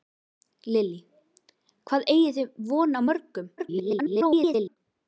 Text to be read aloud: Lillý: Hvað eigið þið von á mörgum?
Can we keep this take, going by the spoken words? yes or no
no